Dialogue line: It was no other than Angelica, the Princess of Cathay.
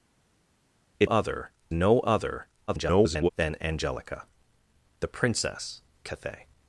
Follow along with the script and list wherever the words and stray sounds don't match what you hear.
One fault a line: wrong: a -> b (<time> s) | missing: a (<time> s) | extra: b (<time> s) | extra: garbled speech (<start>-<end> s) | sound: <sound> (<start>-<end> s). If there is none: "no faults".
wrong: was -> other (1.0 s)
extra: garbled speech (2.7-3.3 s)
missing: of (5.8 s)